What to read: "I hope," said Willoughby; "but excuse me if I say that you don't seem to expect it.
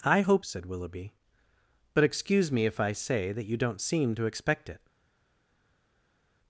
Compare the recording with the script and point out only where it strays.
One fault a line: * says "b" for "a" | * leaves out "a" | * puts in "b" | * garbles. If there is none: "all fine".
all fine